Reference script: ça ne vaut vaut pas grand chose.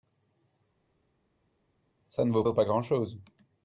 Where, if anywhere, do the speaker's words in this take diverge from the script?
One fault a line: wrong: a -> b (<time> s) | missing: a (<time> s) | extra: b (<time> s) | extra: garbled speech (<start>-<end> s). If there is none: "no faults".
no faults